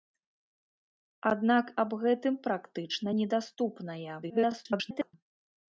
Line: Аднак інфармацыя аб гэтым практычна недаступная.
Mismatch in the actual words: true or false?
true